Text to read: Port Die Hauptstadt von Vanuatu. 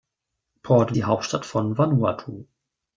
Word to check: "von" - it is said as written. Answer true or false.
true